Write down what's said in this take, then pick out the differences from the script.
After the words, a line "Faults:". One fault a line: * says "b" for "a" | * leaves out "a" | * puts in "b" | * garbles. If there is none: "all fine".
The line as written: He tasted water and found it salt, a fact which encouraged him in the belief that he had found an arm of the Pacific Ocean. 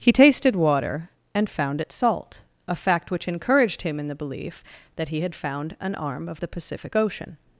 He tasted water and found it salt, a fact which encouraged him in the belief that he had found an arm of the Pacific Ocean.
Faults:
all fine